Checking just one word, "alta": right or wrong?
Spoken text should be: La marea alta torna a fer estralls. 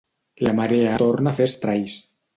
wrong